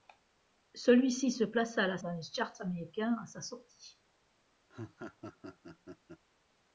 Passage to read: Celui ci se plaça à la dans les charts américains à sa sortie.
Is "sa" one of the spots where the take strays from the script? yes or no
no